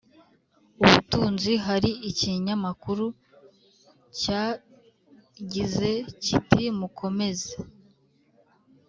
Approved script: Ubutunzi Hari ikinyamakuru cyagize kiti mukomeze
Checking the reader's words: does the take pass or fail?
pass